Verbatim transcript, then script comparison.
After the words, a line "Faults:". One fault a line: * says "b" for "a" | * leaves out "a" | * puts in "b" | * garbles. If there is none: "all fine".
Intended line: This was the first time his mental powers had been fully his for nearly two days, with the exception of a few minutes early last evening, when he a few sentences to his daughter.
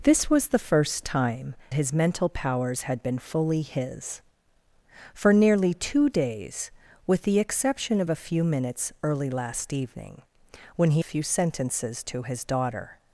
This was the first time his mental powers had been fully his for nearly two days, with the exception of a few minutes early last evening, when he a few sentences to his daughter.
Faults:
all fine